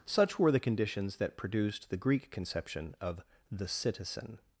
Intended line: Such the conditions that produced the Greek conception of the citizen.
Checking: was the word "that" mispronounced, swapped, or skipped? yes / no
no